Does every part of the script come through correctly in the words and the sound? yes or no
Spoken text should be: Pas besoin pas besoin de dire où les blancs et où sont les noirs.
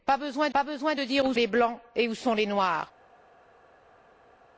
yes